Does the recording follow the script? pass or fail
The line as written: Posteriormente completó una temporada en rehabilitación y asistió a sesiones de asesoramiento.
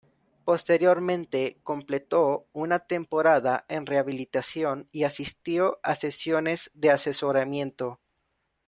pass